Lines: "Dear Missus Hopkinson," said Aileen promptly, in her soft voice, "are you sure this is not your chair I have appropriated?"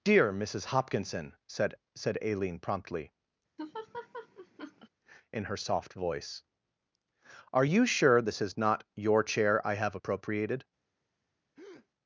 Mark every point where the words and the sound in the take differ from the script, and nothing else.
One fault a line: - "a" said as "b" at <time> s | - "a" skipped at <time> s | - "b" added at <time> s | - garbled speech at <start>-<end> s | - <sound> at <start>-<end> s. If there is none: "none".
- "said" added at 1.9 s
- laugh at 3.6-4.9 s
- breath at 11.6-11.9 s